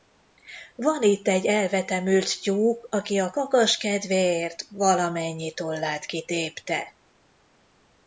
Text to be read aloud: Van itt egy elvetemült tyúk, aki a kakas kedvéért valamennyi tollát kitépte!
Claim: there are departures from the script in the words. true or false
false